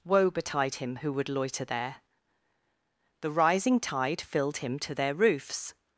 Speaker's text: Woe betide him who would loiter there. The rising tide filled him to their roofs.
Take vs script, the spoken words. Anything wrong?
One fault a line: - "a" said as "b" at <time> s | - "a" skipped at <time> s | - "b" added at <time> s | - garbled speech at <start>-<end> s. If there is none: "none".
none